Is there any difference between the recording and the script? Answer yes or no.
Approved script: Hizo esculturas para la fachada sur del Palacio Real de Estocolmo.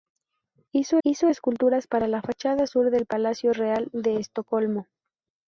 yes